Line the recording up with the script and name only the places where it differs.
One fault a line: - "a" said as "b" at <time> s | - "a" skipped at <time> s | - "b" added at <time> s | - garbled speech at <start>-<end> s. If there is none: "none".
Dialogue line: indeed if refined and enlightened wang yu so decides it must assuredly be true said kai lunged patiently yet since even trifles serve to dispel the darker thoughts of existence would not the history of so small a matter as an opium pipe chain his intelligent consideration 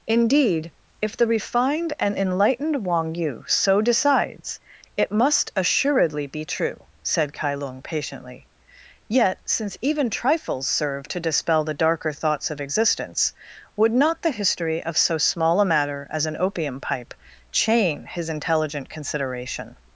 - "the" added at 1.1 s
- "lunged" said as "lung" at 7.5 s